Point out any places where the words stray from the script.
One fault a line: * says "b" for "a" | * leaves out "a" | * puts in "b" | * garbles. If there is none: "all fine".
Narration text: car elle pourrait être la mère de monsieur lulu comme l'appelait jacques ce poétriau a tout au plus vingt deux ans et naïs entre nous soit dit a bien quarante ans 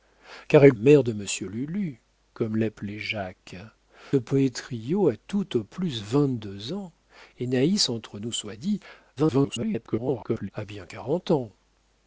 * leaves out "pourrait être la"
* leaves out "ce"
* garbles